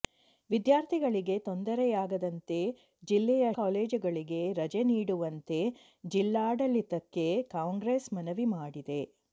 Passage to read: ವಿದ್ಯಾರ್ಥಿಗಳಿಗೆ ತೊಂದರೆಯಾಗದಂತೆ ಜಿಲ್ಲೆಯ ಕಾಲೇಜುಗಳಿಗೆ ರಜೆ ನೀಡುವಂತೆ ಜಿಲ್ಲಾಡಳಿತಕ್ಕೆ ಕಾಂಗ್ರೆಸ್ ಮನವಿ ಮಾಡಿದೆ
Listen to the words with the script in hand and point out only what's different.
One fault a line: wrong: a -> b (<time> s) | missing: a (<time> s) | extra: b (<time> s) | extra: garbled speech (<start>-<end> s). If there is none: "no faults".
no faults